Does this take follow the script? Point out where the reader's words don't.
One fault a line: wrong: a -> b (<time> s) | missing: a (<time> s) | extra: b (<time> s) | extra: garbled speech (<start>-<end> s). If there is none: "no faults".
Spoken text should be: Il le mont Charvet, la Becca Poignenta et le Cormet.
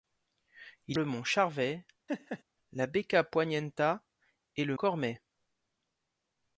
no faults